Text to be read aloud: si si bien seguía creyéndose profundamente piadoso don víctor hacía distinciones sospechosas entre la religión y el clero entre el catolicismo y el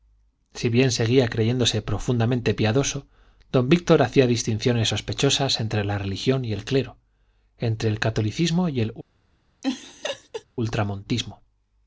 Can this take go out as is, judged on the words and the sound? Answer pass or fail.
fail